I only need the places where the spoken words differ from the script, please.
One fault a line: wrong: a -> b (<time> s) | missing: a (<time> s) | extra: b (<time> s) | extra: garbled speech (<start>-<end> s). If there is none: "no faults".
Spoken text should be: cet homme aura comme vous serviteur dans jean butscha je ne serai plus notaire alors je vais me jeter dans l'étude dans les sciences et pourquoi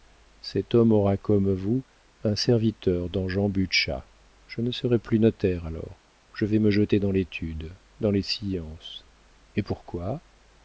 extra: un (2.2 s)